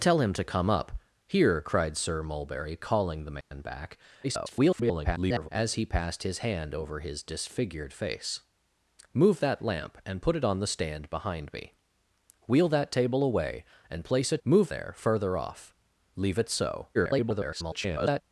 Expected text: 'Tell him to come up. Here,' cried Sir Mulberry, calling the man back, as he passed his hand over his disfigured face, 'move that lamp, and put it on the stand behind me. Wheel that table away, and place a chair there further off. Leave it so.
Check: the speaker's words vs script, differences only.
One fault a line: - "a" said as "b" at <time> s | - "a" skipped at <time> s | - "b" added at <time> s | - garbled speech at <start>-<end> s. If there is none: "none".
- garbled speech at 4.2-5.5 s
- "chair" said as "move" at 14.4 s
- garbled speech at 16.9-18.2 s